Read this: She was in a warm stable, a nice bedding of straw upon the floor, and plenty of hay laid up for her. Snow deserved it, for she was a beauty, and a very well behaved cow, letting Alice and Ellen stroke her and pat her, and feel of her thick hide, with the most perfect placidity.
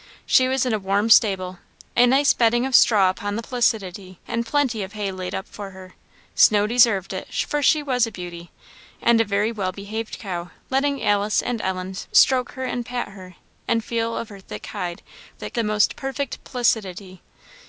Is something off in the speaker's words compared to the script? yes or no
yes